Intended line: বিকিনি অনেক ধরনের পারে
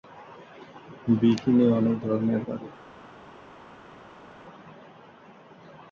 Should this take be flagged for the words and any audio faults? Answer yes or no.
no